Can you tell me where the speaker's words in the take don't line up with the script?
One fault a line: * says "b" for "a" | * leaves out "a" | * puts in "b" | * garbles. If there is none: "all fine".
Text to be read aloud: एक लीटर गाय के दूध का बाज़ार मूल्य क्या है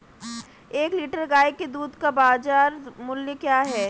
all fine